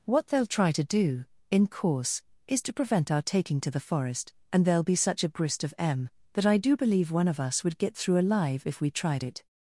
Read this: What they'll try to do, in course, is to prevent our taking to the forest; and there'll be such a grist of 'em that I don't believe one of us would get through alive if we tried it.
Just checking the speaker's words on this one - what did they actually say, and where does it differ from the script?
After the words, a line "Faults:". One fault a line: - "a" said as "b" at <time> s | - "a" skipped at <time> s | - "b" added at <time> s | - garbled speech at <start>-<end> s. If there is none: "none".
What they'll try to do, in course, is to prevent our taking to the forest; and there'll be such a grist of 'em that I do believe one of us would get through alive if we tried it.
Faults:
- "don't" said as "do" at 6.6 s